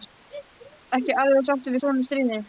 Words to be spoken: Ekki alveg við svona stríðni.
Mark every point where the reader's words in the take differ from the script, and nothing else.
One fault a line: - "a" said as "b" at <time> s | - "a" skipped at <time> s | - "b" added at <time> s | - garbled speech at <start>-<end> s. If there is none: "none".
- "sáttur" added at 1.5 s